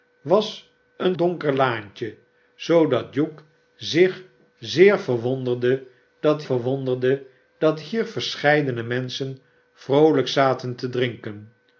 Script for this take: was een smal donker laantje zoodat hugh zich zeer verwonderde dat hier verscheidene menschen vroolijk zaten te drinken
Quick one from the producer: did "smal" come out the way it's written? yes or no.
no